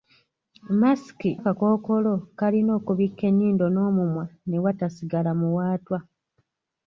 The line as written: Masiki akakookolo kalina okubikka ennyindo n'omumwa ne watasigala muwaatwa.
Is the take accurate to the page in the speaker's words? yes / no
yes